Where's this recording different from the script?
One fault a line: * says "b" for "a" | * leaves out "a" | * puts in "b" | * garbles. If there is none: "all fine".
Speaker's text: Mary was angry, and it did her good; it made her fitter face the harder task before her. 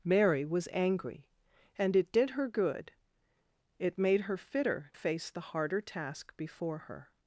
all fine